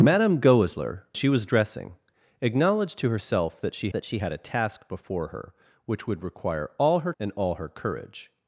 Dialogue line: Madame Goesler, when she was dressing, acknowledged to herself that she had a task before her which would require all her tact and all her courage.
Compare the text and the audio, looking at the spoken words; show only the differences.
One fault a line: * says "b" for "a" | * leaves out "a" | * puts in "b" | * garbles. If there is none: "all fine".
* leaves out "when"
* puts in "that she"
* leaves out "tact"